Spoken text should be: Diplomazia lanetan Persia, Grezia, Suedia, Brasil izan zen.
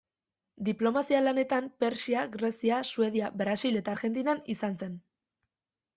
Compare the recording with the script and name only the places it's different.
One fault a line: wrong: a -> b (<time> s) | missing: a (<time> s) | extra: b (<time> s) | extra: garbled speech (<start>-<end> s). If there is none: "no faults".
extra: eta Argentinan (3.8 s)